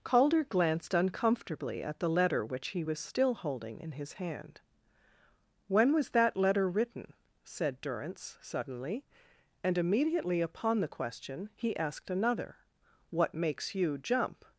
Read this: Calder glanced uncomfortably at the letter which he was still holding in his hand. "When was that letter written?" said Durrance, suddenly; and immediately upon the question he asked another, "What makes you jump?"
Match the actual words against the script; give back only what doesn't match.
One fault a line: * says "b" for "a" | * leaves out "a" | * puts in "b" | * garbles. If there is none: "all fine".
all fine